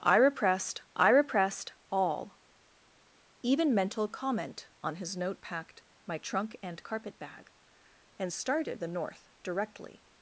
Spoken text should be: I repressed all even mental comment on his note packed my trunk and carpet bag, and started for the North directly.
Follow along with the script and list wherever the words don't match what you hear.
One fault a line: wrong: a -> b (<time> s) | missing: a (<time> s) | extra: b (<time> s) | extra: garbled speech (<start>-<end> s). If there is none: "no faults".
extra: I repressed (0.9 s)
missing: for (8.8 s)